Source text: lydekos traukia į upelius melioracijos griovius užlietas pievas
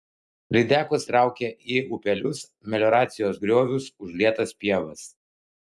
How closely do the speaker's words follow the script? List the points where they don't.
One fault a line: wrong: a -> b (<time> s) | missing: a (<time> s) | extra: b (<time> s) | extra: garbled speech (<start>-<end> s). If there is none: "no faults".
no faults